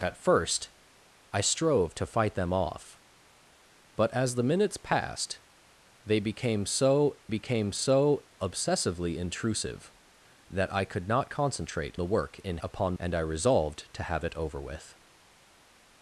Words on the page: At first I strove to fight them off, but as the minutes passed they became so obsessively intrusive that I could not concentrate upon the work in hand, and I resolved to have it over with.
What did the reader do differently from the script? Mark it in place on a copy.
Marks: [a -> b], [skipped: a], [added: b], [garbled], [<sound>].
At first I strove to fight them off, but as the minutes passed they became so [added: became so] obsessively intrusive that I could not concentrate [skipped: upon] the work in [hand, -> upon] and I resolved to have it over with.